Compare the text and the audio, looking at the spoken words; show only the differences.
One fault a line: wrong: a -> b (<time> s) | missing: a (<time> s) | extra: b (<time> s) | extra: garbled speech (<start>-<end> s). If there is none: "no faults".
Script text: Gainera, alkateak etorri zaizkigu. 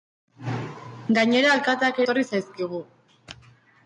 no faults